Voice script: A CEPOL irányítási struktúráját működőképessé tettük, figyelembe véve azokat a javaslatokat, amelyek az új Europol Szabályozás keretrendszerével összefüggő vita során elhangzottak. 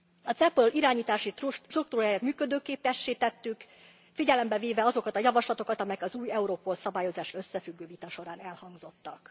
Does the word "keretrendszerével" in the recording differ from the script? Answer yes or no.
yes